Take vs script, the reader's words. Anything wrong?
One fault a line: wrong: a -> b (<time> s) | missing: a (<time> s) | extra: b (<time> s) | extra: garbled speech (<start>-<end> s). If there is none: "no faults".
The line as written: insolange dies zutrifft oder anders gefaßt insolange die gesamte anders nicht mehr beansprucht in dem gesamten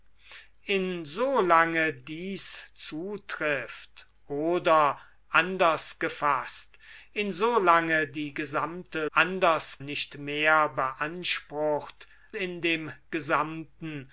no faults